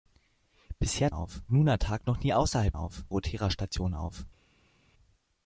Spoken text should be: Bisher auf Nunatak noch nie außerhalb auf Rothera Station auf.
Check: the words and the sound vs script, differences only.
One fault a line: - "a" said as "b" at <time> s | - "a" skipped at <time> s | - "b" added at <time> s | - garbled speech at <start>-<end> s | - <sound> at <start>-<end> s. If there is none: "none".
none